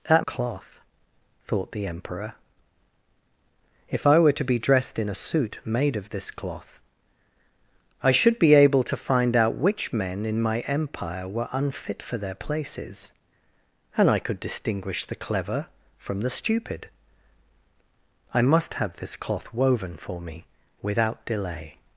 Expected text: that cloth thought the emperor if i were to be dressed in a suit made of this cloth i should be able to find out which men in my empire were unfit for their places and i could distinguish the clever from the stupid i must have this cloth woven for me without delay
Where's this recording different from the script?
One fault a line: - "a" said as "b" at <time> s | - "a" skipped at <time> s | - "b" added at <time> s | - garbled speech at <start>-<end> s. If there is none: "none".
none